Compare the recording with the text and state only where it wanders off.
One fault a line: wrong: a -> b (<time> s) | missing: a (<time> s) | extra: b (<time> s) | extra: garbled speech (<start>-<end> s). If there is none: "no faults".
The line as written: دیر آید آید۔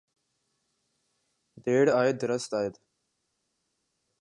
extra: درست (2.2 s)